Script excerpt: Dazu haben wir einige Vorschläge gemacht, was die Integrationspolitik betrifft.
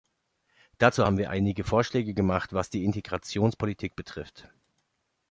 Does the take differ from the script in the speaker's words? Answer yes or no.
no